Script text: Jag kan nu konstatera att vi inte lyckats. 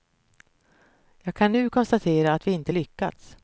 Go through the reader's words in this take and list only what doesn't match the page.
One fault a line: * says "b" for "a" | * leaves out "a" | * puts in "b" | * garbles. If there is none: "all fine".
all fine